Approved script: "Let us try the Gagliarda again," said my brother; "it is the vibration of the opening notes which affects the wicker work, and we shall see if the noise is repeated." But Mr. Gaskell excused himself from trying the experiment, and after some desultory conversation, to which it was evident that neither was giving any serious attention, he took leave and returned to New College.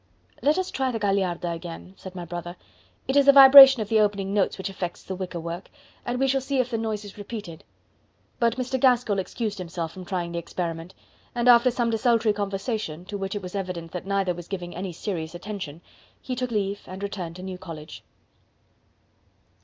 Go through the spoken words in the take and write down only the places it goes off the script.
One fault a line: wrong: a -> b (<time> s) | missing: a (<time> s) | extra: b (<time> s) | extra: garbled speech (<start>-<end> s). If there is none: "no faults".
no faults